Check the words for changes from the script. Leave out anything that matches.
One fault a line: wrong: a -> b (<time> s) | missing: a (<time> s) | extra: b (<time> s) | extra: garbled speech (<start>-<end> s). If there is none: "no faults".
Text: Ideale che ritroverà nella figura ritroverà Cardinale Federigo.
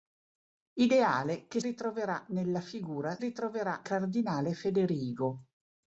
no faults